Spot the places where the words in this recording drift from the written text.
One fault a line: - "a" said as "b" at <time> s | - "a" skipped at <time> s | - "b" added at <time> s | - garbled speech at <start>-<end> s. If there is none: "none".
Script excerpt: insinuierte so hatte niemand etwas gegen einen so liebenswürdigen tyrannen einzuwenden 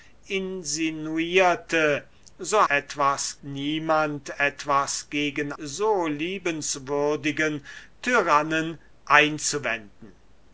- "hatte" said as "etwas" at 2.7 s
- "einen" skipped at 5.5 s